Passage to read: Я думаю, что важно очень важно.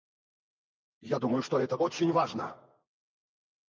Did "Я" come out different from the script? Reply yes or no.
no